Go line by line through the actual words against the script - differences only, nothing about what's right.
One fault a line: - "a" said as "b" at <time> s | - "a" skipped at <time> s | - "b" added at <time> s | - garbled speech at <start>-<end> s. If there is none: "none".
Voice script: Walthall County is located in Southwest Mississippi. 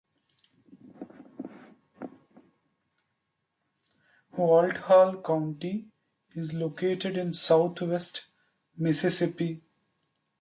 none